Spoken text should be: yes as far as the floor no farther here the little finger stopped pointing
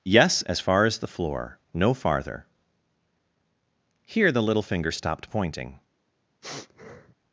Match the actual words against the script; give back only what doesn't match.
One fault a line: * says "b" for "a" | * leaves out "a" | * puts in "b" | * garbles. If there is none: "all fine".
all fine